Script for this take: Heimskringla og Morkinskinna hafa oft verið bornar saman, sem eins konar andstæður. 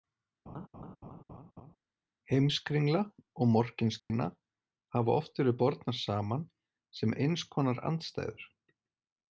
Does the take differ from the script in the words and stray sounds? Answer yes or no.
yes